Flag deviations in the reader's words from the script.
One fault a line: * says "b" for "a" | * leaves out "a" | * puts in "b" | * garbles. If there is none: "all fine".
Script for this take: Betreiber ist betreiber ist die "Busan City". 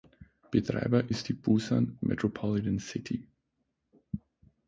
* leaves out "betreiber ist"
* puts in "Metropolitan"